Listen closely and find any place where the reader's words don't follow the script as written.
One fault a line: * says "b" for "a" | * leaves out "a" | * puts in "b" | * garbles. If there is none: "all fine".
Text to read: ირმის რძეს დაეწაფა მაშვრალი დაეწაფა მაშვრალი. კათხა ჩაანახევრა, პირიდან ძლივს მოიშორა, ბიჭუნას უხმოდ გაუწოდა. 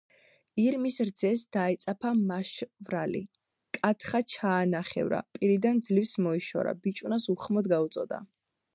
* leaves out "დაეწაფა მაშვრალი"